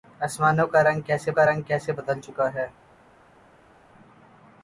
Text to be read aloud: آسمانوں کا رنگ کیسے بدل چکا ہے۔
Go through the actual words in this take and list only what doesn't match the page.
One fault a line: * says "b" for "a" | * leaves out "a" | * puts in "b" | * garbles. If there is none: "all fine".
* puts in "کا رنگ کیسے"